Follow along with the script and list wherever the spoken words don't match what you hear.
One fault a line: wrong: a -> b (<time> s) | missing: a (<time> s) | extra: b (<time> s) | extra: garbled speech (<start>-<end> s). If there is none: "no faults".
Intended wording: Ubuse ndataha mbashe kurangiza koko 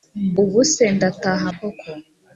missing: mbashe kurangiza (1.5 s)